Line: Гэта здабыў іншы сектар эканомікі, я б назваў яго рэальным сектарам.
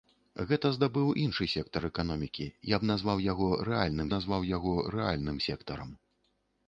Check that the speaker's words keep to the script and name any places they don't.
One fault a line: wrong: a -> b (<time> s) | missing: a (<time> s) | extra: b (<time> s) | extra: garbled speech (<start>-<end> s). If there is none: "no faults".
extra: назваў яго рэальным (4.1 s)